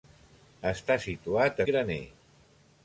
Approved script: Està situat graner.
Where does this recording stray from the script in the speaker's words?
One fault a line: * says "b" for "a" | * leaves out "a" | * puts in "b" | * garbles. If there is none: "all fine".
all fine